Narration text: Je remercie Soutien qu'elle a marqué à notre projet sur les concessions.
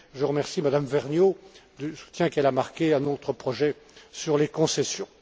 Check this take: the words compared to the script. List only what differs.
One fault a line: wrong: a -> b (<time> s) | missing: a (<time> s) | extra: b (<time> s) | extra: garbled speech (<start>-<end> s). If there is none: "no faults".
extra: Mme Vergnaud du (0.6 s)